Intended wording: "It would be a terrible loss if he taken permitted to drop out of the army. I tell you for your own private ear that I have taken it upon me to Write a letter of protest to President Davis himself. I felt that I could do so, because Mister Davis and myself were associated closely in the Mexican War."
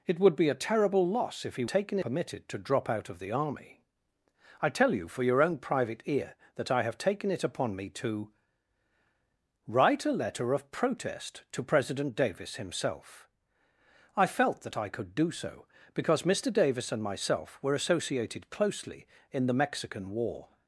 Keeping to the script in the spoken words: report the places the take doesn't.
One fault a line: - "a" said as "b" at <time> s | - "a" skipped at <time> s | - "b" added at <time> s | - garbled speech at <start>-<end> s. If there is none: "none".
none